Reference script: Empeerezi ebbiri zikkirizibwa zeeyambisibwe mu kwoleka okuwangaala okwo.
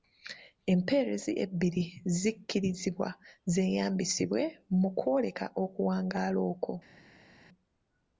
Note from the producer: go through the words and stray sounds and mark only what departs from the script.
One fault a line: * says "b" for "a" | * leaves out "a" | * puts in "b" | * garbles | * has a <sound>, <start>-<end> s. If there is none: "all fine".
all fine